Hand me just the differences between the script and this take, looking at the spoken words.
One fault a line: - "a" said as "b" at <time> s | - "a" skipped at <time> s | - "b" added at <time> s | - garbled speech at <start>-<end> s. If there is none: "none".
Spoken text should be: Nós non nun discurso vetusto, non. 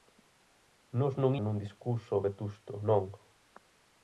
none